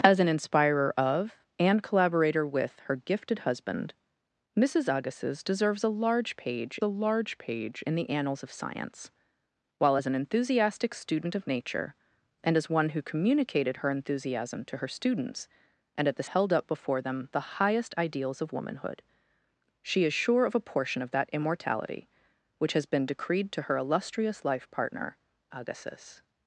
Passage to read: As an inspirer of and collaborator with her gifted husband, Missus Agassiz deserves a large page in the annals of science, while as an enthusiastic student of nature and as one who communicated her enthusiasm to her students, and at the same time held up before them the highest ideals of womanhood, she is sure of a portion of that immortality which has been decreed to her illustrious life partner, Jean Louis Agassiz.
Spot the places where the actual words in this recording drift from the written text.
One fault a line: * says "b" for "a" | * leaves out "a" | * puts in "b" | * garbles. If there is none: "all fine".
* puts in "a large page"
* leaves out "same time"
* leaves out "Jean Louis"